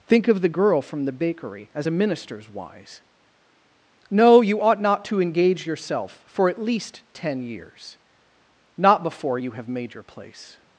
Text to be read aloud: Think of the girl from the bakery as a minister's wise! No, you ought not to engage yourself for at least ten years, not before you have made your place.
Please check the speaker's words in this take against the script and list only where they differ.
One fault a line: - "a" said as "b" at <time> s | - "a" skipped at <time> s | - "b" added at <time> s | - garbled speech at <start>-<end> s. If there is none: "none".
none